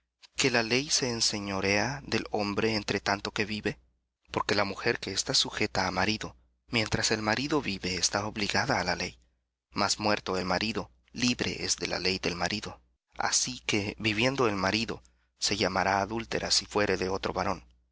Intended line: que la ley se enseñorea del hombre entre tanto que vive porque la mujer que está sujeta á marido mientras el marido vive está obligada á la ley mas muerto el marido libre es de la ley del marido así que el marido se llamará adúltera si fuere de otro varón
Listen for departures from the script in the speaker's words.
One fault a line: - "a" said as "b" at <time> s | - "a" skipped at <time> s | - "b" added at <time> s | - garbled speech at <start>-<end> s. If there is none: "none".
- "viviendo" added at 14.0 s